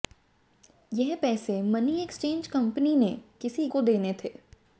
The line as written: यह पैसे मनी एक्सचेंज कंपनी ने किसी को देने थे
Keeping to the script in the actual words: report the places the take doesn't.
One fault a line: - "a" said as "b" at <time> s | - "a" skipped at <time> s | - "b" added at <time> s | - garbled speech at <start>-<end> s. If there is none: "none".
none